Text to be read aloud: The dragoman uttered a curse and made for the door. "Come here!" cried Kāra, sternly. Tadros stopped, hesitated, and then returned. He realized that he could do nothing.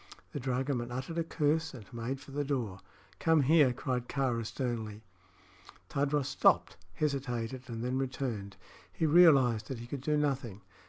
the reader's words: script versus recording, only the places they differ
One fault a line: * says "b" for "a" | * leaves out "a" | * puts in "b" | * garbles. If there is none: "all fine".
all fine